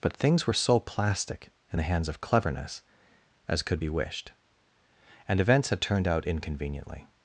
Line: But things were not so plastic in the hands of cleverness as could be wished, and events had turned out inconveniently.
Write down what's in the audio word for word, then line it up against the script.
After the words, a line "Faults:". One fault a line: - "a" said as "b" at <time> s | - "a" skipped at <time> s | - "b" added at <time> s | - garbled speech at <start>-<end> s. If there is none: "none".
But things were so plastic in the hands of cleverness as could be wished, and events had turned out inconveniently.
Faults:
- "not" skipped at 0.5 s